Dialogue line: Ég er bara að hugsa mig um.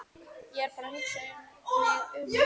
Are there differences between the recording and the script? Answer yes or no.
no